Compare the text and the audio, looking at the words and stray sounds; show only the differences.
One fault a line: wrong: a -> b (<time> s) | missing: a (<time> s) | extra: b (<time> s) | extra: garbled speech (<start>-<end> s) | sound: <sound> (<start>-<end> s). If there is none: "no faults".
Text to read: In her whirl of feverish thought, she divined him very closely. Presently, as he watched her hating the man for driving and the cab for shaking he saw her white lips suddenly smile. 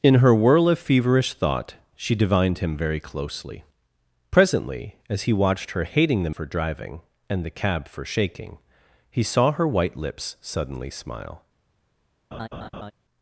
missing: man (6.3 s)
sound: laugh (12.3-12.9 s)